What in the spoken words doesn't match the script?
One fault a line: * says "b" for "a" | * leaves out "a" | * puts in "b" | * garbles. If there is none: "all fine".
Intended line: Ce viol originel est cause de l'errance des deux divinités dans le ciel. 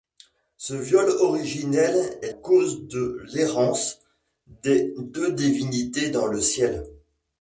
all fine